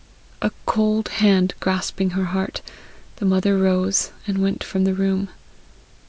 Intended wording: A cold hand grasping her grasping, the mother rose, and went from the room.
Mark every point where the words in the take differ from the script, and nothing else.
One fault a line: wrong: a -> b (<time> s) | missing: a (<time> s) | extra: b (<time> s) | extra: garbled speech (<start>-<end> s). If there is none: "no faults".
wrong: grasping -> heart (2.3 s)